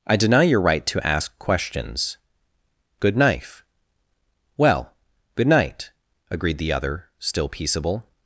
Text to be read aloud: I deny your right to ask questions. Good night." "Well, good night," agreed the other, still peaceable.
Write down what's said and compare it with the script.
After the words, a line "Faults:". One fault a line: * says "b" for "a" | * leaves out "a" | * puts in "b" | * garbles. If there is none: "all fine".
I deny your right to ask questions. Good knife." "Well, good night," agreed the other, still peaceable.
Faults:
* says "knife" for "night"